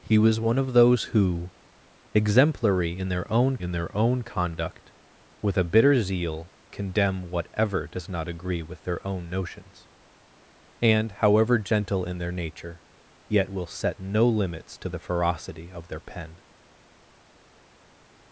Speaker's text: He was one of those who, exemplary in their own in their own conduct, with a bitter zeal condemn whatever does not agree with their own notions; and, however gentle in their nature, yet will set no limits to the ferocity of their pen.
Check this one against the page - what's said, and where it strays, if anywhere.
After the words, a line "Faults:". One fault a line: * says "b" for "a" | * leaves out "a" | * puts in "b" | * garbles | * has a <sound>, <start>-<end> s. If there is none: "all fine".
He was one of those who, exemplary in their own in their own conduct, with a bitter zeal condemn whatever does not agree with their own notions; and, however gentle in their nature, yet will set no limits to the ferocity of their pen.
Faults:
all fine